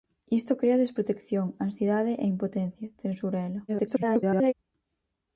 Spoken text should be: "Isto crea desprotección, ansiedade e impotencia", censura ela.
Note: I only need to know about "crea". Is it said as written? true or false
true